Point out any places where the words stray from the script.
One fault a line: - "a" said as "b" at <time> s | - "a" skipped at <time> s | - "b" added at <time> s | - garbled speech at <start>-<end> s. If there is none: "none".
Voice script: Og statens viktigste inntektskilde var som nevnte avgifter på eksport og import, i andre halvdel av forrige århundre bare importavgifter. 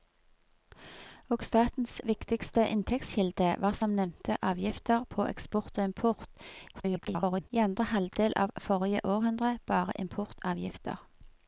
- garbled speech at 6.7-7.5 s